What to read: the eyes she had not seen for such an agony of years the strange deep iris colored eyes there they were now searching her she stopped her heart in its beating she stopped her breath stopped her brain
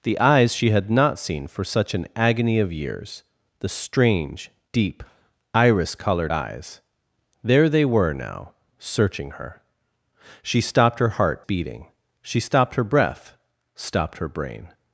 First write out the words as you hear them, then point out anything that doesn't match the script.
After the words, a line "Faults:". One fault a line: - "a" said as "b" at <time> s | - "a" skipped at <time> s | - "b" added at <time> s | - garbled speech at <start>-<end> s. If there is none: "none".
the eyes she had not seen for such an agony of years the strange deep iris colored eyes there they were now searching her she stopped her heart beating she stopped her breath stopped her brain
Faults:
- "in its" skipped at 11.4 s